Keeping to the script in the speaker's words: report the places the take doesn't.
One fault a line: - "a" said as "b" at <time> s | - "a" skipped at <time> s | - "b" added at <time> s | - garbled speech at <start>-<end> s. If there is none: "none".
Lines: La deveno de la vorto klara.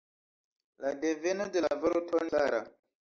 none